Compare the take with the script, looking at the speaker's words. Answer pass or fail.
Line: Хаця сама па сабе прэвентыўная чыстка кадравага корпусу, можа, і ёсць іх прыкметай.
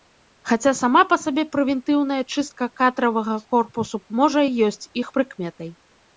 pass